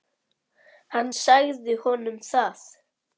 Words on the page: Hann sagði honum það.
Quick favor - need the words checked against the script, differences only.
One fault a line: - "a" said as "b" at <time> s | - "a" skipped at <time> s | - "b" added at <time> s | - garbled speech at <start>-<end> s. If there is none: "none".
none